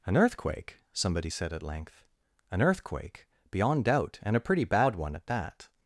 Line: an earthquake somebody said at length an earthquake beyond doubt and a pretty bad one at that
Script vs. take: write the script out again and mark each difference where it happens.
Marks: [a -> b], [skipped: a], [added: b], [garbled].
an earthquake somebody said at length an earthquake beyond doubt and a pretty bad one at that